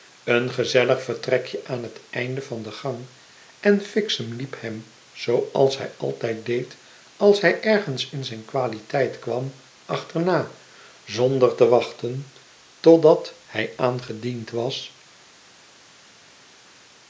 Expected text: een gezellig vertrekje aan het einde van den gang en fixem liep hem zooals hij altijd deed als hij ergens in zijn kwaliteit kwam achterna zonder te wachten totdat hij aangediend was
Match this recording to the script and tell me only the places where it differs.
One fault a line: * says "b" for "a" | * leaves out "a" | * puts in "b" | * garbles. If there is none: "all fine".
all fine